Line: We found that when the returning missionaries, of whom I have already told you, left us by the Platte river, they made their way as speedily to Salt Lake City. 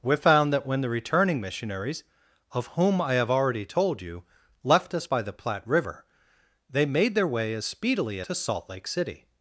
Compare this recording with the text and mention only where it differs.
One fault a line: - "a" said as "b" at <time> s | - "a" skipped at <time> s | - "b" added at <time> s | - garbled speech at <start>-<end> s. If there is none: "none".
none